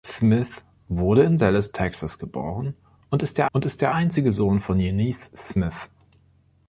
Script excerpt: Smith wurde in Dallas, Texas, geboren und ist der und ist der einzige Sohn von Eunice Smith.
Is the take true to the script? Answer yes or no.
yes